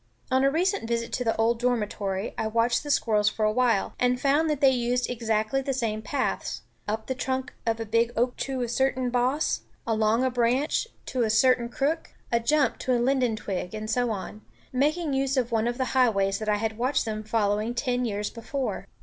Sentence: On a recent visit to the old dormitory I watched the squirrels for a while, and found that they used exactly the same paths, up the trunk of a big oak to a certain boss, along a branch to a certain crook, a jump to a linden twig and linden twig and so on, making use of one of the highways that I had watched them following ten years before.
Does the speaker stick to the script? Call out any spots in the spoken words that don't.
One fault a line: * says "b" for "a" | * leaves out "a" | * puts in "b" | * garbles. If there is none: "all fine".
* leaves out "linden twig and"